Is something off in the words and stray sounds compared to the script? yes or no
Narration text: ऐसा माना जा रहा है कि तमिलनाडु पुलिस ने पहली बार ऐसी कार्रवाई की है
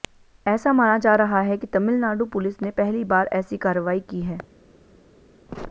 no